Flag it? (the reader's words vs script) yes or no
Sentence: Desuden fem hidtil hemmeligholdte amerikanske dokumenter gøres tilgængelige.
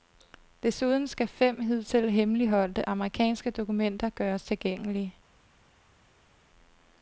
yes